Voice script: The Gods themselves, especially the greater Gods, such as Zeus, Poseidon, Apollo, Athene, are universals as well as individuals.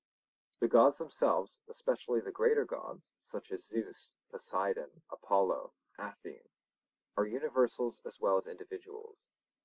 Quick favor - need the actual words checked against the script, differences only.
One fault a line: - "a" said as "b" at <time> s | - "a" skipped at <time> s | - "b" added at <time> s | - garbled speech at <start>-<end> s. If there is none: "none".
none